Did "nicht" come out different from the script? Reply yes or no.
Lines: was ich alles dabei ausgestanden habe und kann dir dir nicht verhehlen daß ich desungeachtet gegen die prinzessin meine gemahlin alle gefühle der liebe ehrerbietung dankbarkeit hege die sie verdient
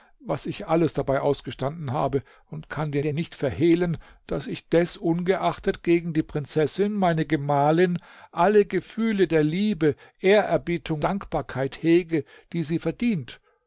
no